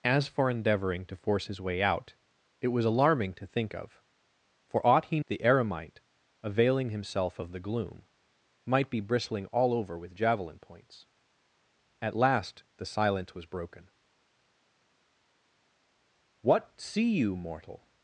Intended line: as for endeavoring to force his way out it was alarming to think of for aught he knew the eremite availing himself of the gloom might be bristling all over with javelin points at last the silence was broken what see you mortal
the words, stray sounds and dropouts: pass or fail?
fail